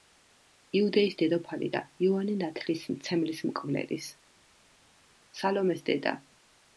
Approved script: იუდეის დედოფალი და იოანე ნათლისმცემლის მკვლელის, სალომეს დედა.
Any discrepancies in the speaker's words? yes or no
no